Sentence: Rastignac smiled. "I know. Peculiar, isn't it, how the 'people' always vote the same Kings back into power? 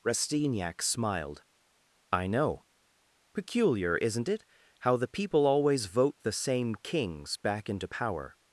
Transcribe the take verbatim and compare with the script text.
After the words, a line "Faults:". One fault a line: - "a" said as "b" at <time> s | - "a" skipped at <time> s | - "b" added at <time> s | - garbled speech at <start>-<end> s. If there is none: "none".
Rastignac smiled. "I know. Peculiar, isn't it, how the 'people' always vote the same Kings back into power?
Faults:
none